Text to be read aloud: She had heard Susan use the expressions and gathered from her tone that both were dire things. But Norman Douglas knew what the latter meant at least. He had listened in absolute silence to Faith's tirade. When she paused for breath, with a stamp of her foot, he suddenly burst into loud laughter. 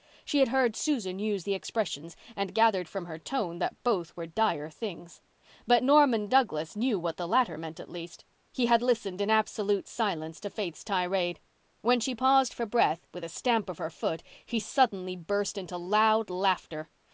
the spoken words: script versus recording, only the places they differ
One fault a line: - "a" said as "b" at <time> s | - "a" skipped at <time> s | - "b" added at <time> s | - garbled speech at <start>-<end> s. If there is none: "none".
none